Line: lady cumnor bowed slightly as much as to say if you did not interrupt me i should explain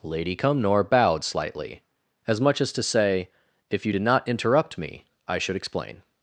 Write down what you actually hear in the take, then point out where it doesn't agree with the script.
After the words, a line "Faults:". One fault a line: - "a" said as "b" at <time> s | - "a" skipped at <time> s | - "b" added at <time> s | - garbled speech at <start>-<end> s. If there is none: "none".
lady cumnor bowed slightly as much as to say if you did not interrupt me i should explain
Faults:
none